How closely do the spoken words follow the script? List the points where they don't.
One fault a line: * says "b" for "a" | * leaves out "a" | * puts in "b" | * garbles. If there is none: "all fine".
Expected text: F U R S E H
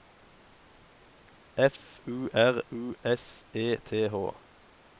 * puts in "U"
* puts in "T"